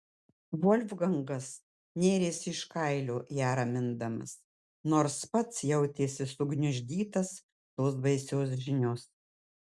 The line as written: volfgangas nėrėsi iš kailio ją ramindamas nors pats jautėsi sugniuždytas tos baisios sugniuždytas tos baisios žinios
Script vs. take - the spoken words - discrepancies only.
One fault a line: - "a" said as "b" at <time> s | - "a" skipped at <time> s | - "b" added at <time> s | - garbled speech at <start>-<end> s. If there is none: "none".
- "sugniuždytas tos baisios" skipped at 8.6 s